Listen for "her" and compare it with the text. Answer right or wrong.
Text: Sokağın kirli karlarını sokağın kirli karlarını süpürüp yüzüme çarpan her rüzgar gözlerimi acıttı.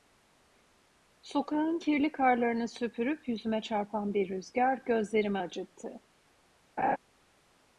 wrong